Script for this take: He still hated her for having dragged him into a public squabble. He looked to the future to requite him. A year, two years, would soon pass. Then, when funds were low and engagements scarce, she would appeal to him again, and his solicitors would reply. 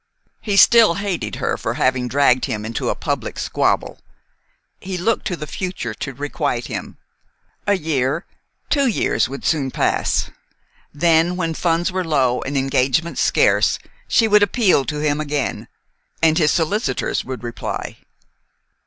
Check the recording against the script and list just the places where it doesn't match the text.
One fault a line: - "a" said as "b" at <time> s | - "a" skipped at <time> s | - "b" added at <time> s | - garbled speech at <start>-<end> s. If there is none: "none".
none